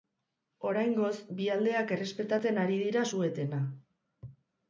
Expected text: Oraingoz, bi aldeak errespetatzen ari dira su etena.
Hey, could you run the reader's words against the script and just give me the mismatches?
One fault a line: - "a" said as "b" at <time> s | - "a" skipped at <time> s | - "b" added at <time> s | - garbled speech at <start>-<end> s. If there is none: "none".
none